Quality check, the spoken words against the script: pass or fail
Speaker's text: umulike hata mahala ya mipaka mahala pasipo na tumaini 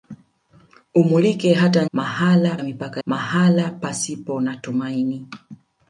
pass